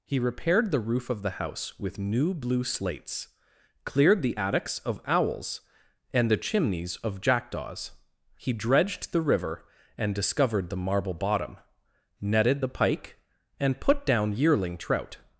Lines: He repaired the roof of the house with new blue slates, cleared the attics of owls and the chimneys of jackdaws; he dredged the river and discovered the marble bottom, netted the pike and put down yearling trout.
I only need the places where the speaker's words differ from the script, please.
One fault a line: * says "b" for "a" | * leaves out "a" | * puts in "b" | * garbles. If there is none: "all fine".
all fine